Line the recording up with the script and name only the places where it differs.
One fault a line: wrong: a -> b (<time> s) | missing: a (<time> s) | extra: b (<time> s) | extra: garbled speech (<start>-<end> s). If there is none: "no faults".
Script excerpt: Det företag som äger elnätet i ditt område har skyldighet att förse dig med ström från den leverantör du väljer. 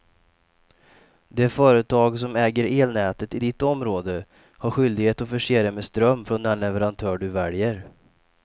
no faults